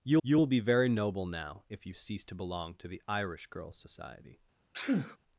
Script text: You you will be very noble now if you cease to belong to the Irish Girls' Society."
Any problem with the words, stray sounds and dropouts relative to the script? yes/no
yes